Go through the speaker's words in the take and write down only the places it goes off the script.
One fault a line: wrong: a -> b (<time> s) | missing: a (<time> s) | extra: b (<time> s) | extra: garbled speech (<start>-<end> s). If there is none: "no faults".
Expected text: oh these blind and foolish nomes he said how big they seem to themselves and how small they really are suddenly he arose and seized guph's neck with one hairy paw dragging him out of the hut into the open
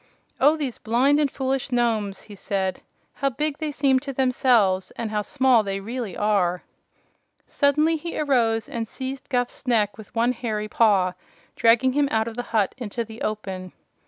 no faults